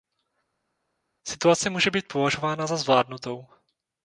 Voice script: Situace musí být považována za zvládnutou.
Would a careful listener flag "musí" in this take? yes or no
yes